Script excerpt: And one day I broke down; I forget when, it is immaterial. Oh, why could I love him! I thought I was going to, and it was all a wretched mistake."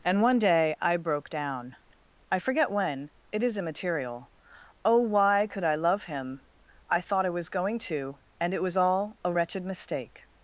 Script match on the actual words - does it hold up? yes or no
yes